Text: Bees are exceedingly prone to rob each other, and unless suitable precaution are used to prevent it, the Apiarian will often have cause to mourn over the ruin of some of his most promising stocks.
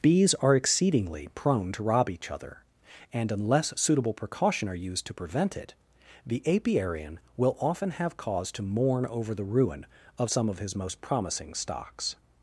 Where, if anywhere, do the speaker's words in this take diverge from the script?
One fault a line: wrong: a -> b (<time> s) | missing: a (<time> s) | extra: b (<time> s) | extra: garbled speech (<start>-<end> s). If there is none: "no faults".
no faults